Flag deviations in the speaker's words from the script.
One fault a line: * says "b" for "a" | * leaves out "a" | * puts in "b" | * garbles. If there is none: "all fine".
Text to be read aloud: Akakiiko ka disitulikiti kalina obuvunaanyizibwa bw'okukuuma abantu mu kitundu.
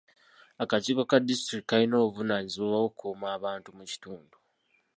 all fine